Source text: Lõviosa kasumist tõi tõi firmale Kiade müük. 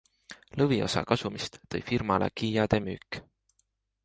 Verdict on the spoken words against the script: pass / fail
fail